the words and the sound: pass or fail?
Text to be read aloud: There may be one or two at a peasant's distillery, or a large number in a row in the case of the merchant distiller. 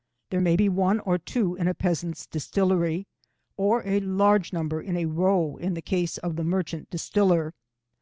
fail